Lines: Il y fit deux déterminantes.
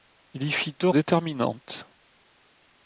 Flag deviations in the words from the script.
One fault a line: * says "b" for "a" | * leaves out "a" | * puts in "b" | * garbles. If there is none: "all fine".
all fine